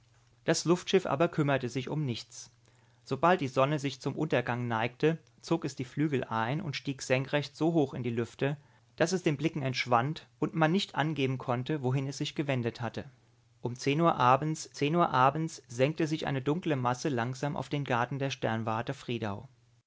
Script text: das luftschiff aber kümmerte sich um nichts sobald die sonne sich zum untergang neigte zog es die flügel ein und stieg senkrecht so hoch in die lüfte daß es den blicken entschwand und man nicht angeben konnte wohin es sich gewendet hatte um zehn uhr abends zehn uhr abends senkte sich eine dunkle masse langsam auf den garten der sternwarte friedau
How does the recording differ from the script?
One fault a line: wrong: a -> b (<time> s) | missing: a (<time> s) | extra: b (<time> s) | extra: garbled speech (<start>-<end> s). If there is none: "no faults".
no faults